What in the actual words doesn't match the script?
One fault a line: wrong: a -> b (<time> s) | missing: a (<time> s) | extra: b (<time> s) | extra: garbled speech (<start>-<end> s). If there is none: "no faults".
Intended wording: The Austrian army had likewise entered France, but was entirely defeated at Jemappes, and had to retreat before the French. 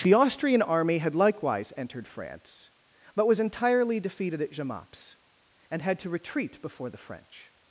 no faults